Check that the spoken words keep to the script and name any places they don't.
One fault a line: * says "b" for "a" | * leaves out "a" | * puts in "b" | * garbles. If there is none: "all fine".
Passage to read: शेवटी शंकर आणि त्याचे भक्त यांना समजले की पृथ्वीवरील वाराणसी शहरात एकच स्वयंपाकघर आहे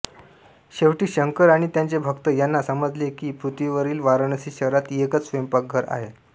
all fine